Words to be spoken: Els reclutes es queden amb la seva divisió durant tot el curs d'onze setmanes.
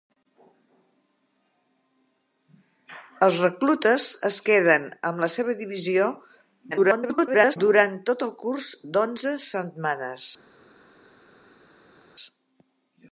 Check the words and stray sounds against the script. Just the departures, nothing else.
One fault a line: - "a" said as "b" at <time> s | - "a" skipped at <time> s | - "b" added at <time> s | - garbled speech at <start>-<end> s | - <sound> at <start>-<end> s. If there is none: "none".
- garbled speech at 6.7-7.6 s